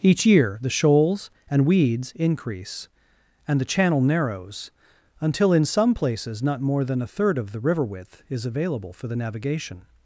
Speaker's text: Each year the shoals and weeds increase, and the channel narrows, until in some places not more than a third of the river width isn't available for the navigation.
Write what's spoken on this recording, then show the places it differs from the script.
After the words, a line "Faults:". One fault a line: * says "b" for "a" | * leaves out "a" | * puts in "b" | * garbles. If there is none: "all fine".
Each year the shoals and weeds increase, and the channel narrows, until in some places not more than a third of the river width is available for the navigation.
Faults:
* says "is" for "isn't"